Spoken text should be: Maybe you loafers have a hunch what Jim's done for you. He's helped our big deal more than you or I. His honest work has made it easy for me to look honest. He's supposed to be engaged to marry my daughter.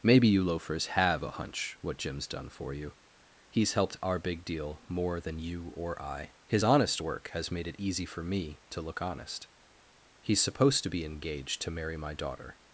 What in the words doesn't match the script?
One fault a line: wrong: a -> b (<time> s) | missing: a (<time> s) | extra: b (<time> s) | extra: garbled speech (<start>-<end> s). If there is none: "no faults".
no faults